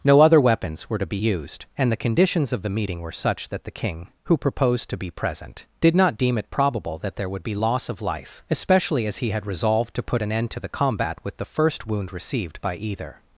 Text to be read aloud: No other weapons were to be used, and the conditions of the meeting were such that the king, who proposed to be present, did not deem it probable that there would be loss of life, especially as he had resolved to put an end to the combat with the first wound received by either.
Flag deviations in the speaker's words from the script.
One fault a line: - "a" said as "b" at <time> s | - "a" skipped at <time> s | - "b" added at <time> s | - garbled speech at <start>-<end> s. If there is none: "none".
none